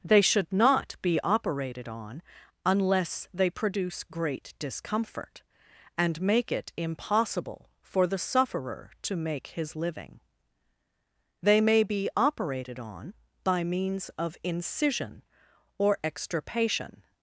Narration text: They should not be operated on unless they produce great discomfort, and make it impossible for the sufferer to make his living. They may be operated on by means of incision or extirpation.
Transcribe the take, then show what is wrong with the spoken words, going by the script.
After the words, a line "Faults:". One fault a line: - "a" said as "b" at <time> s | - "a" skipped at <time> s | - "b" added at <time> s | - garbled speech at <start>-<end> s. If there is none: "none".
They should not be operated on unless they produce great discomfort, and make it impossible for the sufferer to make his living. They may be operated on by means of incision or extirpation.
Faults:
none